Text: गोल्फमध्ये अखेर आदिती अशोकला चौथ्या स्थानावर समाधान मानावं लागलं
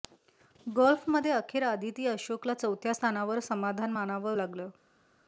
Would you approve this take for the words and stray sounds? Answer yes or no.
yes